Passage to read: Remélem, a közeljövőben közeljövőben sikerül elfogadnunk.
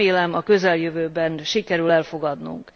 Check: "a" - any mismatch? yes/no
no